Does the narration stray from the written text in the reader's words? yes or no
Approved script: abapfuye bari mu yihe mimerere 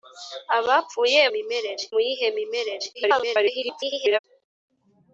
yes